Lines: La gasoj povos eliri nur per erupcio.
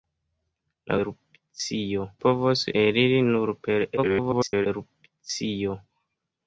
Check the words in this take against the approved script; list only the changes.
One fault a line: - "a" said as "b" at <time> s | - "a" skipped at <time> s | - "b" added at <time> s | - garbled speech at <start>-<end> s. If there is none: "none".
- "gasoj" said as "erupcio" at 1.0 s
- garbled speech at 4.0-4.7 s